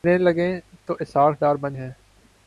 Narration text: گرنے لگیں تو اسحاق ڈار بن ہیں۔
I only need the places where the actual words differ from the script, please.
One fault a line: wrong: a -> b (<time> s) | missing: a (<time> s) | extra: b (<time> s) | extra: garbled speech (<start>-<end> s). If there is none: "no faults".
no faults